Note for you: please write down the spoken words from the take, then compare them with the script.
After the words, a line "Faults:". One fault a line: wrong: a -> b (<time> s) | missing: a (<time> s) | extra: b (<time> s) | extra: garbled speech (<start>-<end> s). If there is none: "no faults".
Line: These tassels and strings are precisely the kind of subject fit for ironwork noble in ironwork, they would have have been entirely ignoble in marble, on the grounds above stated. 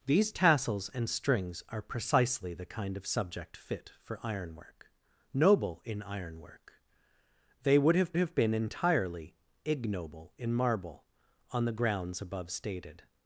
These tassels and strings are precisely the kind of subject fit for ironwork noble in ironwork, they would have have been entirely ignoble in marble, on the grounds above stated.
Faults:
no faults